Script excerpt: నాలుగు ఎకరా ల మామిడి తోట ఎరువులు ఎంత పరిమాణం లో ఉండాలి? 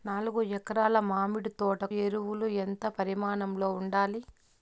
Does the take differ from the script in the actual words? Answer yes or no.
no